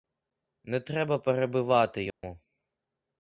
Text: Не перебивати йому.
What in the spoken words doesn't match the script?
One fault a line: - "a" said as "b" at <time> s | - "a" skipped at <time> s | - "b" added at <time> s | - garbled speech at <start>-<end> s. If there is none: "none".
- "треба" added at 0.8 s